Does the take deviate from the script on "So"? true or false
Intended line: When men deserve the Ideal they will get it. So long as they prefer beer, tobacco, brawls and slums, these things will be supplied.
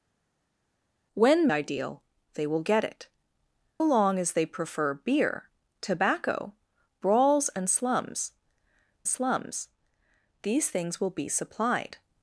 true